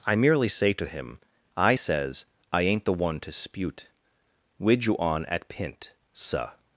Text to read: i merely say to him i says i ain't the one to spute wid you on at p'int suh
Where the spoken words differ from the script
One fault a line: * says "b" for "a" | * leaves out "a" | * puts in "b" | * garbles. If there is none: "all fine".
all fine